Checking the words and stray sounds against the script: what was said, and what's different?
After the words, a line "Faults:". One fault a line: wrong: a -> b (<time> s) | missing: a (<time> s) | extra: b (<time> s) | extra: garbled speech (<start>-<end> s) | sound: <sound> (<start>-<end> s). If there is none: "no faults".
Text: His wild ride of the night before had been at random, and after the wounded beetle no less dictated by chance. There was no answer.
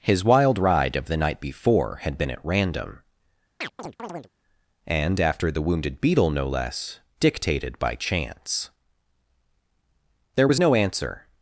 His wild ride of the night before had been at random, and after the wounded beetle no less dictated by chance. There was no answer.
Faults:
sound: chirp (3.6-4.3 s)